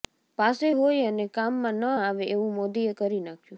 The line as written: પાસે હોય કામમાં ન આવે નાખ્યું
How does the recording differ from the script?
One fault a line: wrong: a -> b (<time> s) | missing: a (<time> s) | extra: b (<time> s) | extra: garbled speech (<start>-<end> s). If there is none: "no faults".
extra: અને (1.1 s)
extra: એવું મોદીએ કરી (2.3 s)